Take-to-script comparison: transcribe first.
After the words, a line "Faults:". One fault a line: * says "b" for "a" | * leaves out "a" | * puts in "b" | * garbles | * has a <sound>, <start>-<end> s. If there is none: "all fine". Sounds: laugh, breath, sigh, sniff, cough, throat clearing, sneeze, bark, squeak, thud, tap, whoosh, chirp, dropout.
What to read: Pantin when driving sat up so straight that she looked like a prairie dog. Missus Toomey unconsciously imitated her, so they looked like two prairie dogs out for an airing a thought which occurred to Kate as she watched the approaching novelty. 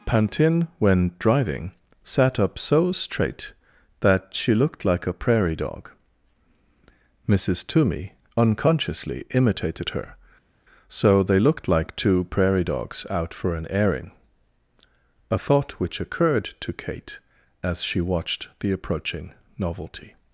Pantin when driving sat up so straight that she looked like a prairie dog. Missus Toomey unconsciously imitated her, so they looked like two prairie dogs out for an airing a thought which occurred to Kate as she watched the approaching novelty.
Faults:
all fine